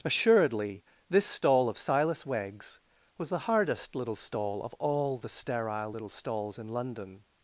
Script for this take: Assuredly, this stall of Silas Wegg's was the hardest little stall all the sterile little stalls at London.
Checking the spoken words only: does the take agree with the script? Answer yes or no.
no